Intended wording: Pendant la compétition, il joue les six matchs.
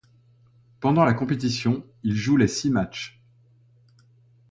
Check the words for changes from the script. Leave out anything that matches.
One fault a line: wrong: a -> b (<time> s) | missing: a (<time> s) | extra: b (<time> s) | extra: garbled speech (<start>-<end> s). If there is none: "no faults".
no faults